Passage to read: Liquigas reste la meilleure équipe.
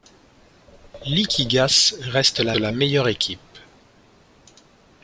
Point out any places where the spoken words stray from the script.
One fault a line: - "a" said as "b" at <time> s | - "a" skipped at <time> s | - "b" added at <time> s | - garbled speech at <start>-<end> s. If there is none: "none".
- "la" added at 2.5 s